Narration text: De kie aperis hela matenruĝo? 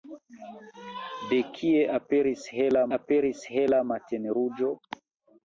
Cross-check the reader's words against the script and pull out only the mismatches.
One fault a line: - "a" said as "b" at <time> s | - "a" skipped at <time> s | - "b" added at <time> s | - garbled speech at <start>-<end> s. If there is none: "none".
- "aperis hela" added at 3.0 s